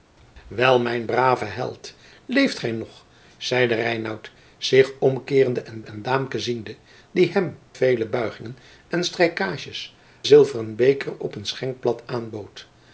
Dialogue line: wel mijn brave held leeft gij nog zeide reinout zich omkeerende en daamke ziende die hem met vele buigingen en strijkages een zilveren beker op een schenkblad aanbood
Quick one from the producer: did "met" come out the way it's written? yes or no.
no